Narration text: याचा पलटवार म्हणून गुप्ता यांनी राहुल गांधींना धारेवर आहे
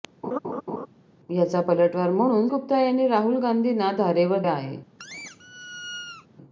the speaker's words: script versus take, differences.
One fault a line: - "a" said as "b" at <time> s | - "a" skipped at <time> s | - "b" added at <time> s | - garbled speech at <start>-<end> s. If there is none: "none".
none